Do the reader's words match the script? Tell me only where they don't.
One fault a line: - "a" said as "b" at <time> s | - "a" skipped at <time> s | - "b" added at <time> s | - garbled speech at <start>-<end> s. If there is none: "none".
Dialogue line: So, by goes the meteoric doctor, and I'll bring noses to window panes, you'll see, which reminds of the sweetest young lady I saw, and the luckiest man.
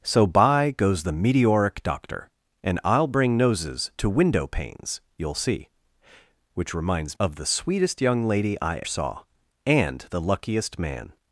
none